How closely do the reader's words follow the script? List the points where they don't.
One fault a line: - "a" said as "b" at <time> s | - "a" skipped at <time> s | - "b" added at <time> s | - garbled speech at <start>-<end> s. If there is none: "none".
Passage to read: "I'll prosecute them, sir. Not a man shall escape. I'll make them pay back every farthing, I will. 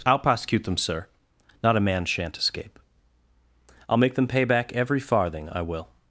- "shall" said as "shan't" at 2.0 s